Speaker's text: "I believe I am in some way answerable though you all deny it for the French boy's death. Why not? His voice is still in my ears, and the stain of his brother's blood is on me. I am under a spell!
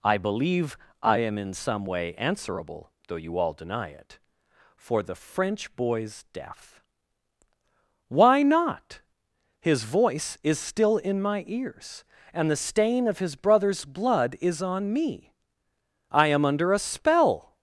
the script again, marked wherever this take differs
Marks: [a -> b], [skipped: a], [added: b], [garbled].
"I believe I am in some way answerable though you all deny it for the French boy's death. Why not? His voice is still in my ears, and the stain of his brother's blood is on me. I am under a spell!